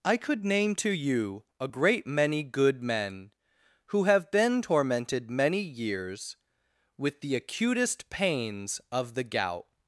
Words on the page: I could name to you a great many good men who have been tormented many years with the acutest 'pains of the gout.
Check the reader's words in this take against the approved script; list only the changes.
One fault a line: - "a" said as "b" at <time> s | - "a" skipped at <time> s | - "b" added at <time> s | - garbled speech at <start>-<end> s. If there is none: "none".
none